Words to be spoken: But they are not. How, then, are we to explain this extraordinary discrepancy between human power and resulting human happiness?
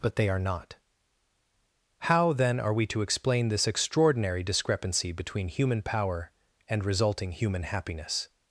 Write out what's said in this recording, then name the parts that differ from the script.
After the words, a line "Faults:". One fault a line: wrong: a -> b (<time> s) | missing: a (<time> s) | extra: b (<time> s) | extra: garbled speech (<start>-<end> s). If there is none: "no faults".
But they are not. How, then, are we to explain this extraordinary discrepancy between human power and resulting human happiness?
Faults:
no faults